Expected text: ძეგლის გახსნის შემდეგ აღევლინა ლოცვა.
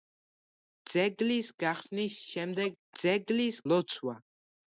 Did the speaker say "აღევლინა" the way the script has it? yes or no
no